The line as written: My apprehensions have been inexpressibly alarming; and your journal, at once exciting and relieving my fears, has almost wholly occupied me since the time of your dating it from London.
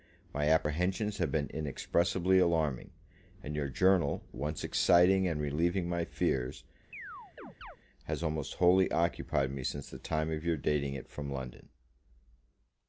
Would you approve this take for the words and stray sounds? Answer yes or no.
no